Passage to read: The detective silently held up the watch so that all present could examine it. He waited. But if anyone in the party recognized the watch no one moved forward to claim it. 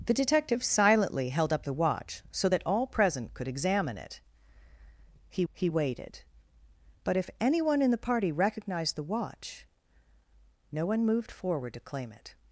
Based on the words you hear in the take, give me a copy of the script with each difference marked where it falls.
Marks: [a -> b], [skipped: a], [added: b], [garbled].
The detective silently held up the watch so that all present could examine it. He [added: he] waited. But if anyone in the party recognized the watch no one moved forward to claim it.